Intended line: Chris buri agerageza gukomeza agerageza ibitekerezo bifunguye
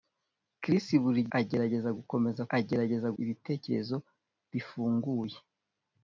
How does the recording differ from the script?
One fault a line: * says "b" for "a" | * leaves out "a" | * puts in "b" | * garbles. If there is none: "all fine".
all fine